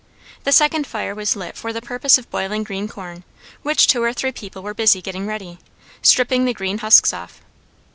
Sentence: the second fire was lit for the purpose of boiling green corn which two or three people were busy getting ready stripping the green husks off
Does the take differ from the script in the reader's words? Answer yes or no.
no